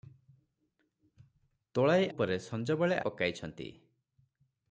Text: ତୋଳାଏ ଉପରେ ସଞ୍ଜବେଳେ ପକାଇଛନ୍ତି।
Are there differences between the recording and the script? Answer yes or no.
no